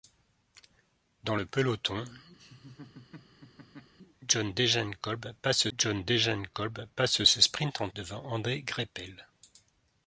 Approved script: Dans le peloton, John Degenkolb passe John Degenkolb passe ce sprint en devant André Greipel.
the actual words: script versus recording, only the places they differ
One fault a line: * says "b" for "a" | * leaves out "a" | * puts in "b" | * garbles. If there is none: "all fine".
all fine